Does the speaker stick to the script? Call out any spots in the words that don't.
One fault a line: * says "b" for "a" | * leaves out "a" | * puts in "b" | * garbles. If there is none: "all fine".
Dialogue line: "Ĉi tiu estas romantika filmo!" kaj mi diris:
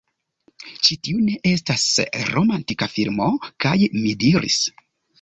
* puts in "ne"